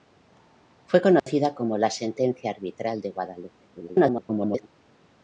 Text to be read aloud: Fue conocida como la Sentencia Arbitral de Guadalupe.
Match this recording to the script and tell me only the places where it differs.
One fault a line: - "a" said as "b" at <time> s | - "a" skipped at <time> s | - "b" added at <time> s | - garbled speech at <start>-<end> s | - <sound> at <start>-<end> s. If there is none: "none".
- dropout at 1.2-1.3 s
- garbled speech at 3.7-4.7 s